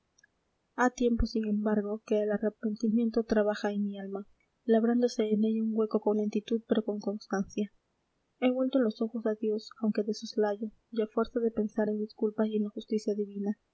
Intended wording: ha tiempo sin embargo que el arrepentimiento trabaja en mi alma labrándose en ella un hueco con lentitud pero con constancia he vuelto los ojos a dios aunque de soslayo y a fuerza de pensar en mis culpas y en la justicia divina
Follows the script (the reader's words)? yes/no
yes